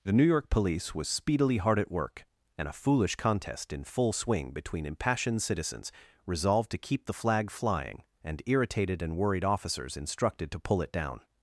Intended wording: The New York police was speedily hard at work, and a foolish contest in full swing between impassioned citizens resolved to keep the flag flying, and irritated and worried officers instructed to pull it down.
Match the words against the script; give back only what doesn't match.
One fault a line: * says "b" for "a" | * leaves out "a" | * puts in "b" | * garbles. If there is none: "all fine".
all fine